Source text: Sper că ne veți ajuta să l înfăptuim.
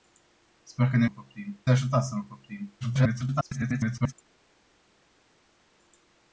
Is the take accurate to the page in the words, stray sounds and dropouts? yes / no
no